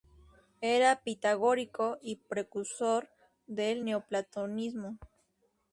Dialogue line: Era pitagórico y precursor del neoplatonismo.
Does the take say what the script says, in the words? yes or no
yes